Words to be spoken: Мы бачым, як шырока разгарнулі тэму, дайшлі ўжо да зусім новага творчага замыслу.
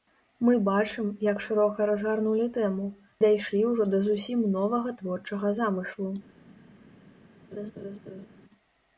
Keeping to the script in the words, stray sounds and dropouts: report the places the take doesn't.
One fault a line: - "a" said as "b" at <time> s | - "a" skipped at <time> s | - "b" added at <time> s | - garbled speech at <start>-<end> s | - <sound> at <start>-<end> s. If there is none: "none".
- laugh at 7.5-8.3 s